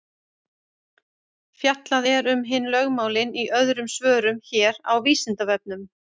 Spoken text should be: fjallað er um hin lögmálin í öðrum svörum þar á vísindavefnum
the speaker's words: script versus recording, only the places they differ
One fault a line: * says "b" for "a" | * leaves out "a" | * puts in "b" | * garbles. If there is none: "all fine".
* says "hér" for "þar"